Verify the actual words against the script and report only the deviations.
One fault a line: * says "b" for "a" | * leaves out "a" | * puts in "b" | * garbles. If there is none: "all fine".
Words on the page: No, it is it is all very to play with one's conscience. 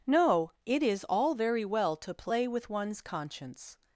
* leaves out "it is"
* puts in "well"